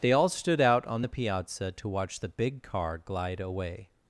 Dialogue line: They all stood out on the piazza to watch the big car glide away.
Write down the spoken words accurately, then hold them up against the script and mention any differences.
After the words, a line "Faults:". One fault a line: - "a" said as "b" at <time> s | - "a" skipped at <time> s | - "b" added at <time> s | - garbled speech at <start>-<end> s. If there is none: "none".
They all stood out on the piazza to watch the big car glide away.
Faults:
none